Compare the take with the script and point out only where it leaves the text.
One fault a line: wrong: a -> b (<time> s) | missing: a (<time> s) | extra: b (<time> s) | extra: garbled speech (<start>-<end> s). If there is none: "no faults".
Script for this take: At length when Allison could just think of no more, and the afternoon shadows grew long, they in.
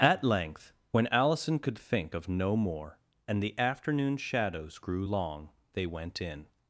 missing: just (1.8 s)
extra: went (5.9 s)